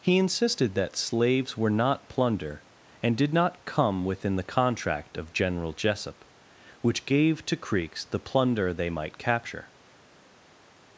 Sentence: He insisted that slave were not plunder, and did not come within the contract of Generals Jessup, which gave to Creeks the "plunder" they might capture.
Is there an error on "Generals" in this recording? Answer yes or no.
yes